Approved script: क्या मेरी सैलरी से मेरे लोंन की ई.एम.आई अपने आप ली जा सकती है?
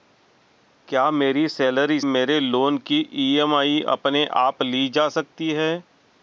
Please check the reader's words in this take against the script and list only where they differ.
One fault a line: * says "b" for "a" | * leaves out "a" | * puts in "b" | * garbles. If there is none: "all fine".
* leaves out "से"